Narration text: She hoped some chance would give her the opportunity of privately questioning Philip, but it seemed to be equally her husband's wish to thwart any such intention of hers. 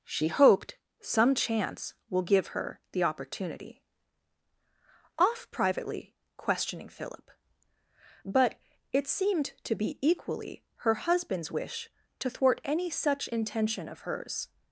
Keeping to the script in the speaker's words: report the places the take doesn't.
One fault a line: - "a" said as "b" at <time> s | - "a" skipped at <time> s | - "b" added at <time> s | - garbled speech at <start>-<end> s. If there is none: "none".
- "would" said as "will" at 2.1 s
- "of" said as "off" at 5.2 s